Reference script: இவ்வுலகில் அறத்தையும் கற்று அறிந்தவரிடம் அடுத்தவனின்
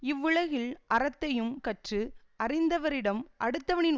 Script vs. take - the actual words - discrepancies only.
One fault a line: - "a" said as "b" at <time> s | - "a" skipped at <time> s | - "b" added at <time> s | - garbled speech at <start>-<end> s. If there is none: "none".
none